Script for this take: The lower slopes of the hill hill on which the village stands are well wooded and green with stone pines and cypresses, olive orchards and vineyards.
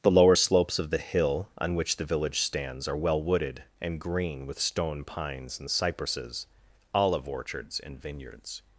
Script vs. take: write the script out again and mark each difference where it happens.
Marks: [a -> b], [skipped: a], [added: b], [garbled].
The lower slopes of the hill [skipped: hill] on which the village stands are well wooded and green with stone pines and cypresses, olive orchards and vineyards.